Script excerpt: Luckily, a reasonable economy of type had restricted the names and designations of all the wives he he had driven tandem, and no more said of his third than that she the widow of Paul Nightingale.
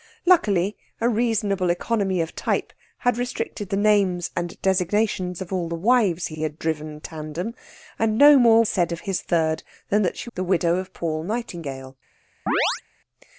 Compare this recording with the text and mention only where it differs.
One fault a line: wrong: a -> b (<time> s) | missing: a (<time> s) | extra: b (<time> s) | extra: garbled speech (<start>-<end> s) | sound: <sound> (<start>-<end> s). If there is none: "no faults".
sound: chirp (12.5-12.8 s)